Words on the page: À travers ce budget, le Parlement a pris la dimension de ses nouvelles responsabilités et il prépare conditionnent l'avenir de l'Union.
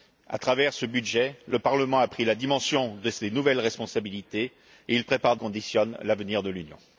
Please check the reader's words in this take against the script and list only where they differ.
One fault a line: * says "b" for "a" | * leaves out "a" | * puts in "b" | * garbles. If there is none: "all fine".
all fine